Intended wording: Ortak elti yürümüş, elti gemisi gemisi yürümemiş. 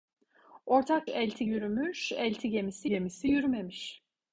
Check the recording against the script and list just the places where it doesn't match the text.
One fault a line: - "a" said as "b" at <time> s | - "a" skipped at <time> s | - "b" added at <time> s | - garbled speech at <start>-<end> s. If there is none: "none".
none